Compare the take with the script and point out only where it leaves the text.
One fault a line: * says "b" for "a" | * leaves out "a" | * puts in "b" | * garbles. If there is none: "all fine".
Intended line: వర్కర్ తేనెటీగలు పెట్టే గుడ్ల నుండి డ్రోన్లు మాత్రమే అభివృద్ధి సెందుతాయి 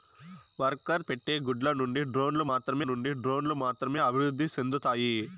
* leaves out "తేనెటీగలు"
* puts in "నుండి డ్రోన్లు మాత్రమే"